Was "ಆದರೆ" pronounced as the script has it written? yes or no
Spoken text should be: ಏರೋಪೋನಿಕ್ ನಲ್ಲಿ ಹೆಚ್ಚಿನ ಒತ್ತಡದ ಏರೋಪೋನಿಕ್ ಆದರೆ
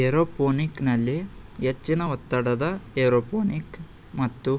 no